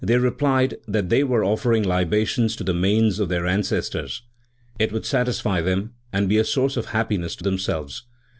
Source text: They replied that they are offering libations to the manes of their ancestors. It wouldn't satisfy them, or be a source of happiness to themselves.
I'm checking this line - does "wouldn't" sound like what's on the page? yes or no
no